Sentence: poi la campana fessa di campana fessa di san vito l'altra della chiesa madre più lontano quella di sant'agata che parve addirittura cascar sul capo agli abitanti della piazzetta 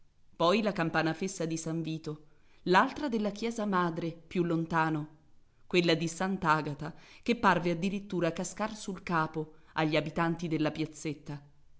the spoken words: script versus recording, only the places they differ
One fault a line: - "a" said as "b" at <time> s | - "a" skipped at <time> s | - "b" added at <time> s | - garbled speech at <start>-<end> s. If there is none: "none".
- "campana fessa di" skipped at 1.6 s